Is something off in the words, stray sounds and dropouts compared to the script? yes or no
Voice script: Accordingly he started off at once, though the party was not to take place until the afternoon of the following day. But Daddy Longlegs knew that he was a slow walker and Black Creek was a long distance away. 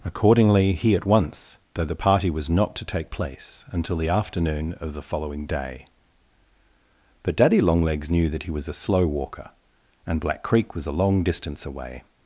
yes